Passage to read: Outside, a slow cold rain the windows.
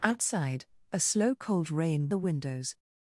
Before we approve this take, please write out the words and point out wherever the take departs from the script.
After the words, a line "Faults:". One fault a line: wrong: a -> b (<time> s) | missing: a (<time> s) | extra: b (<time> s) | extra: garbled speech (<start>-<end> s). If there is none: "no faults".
Outside, a slow cold rain the windows.
Faults:
no faults